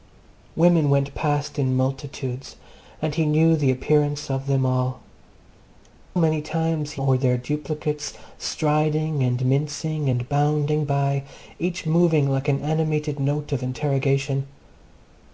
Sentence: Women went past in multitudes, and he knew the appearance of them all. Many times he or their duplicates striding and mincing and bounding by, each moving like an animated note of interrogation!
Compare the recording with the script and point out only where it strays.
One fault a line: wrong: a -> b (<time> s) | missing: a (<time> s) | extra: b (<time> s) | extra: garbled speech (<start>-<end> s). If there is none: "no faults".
no faults